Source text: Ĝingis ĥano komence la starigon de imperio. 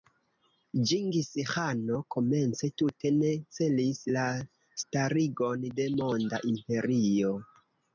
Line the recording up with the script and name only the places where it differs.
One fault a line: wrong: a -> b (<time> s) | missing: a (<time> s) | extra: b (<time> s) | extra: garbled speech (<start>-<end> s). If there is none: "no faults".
extra: tute ne celis (2.8 s)
extra: monda (6.0 s)